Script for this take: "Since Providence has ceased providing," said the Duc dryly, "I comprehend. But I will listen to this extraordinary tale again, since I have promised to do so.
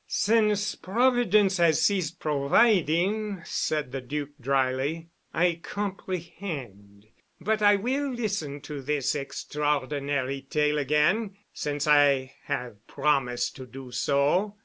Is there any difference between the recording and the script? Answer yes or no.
no